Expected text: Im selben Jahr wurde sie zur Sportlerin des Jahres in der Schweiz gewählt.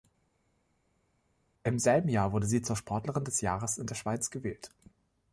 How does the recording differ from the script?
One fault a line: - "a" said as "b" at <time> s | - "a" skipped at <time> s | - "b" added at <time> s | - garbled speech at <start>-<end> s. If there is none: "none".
none